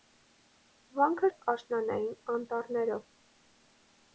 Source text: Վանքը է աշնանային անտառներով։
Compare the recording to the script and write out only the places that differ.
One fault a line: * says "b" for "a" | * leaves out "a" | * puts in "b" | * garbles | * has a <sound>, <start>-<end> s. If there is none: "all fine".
all fine